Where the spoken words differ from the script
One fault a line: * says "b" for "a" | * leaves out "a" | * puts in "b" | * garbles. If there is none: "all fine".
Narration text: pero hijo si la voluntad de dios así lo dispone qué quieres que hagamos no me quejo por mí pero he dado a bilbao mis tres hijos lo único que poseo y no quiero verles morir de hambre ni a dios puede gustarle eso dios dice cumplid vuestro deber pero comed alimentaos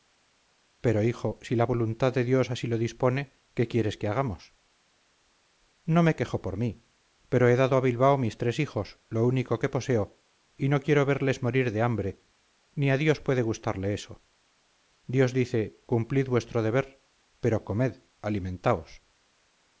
all fine